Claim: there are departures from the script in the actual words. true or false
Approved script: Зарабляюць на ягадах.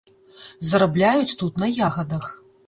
true